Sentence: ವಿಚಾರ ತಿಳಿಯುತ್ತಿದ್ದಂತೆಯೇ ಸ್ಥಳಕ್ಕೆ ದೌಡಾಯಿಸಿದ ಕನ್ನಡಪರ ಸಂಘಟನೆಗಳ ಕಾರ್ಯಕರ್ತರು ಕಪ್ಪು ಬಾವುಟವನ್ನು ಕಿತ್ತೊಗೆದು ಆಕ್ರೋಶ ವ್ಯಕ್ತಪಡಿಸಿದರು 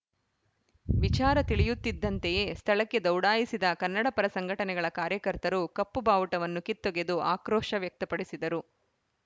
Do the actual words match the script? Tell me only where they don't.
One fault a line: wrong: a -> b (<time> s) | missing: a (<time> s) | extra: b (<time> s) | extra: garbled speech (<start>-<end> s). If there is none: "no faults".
no faults